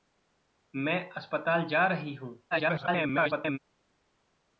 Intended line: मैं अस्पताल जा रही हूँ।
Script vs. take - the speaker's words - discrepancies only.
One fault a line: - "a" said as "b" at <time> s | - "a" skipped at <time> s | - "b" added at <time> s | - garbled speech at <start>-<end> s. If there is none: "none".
- garbled speech at 2.5-3.6 s